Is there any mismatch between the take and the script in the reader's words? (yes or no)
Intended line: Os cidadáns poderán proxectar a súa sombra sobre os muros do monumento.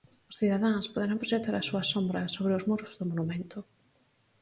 no